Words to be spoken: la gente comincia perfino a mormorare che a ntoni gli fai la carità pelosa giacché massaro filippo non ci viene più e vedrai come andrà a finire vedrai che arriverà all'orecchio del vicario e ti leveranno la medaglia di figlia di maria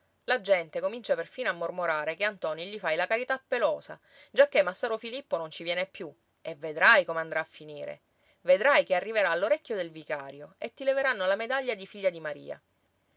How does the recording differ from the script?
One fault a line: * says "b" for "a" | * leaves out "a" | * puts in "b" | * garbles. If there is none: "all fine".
all fine